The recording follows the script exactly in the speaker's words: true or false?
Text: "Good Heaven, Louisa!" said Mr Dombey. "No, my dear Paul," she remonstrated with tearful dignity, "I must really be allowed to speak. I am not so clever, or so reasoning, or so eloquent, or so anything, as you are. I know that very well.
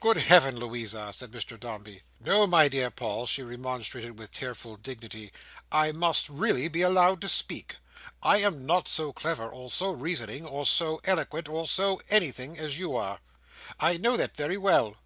true